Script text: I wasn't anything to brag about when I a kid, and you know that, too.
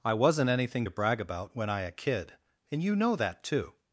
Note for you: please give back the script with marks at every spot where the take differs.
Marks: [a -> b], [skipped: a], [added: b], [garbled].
I wasn't anything to brag about when I a kid, and you know that, too.